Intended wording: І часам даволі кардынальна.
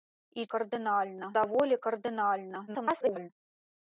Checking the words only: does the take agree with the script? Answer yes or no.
no